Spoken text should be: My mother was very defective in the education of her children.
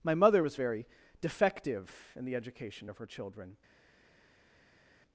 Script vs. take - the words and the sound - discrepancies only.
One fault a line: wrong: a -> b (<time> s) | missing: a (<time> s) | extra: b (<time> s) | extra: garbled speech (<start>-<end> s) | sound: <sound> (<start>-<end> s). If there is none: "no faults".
no faults